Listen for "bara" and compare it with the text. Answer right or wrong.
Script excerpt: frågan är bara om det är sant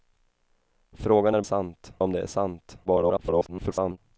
wrong